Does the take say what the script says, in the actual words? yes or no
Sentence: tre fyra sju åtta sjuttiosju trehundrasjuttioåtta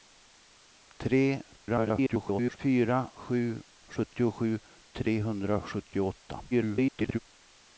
no